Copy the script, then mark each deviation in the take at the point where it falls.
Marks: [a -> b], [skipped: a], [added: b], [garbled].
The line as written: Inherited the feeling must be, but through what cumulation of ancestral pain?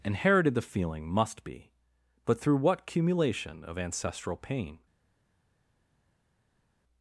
Inherited the feeling must be, but through what cumulation of ancestral pain?